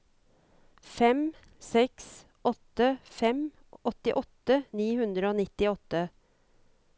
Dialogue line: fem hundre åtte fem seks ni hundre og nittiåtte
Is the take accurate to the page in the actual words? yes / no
no